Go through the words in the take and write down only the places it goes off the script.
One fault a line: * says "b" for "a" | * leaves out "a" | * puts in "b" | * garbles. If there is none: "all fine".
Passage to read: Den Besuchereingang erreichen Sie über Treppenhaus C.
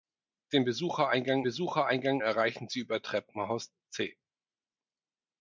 * puts in "Besuchereingang"